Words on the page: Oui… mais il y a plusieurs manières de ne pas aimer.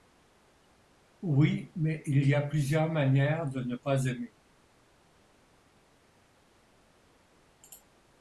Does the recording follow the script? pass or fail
pass